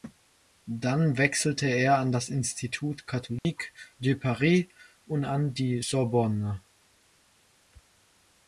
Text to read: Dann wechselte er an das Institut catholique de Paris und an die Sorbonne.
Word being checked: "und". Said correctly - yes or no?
yes